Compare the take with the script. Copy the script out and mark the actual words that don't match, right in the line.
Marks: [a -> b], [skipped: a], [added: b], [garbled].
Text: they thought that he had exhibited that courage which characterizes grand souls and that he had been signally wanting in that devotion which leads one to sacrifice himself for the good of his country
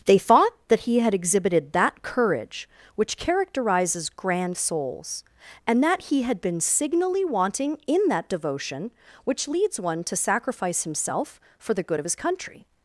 they thought that he had exhibited that courage which characterizes grand souls and that he had been signally wanting in that devotion which leads one to sacrifice himself for the good of his country